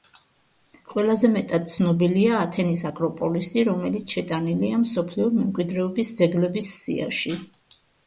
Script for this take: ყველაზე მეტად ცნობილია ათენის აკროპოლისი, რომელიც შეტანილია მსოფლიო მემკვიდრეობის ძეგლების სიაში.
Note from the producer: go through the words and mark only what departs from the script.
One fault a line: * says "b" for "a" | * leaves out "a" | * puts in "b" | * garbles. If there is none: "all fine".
all fine